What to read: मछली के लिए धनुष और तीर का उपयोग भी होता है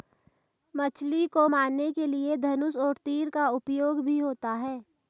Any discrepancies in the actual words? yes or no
yes